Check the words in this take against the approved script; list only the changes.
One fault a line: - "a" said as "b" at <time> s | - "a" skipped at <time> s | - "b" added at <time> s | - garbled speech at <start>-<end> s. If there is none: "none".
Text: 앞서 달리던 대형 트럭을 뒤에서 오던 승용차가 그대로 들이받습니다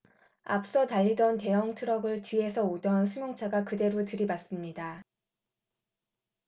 none